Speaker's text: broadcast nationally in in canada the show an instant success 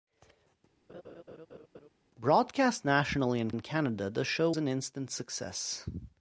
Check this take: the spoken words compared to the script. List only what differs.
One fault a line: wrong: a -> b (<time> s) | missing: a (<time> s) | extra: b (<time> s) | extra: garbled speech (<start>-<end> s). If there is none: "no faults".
no faults